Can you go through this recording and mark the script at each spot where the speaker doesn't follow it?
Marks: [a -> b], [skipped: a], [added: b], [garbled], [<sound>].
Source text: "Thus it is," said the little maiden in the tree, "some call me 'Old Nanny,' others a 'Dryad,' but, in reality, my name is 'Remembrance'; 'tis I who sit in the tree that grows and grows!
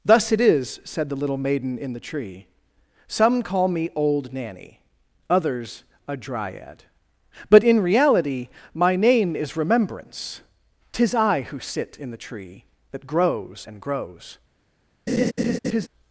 "Thus it is," said the little maiden in the tree, "some call me 'Old Nanny,' others a 'Dryad,' but, in reality, my name is 'Remembrance'; 'tis I who sit in the tree that grows and grows! [laugh]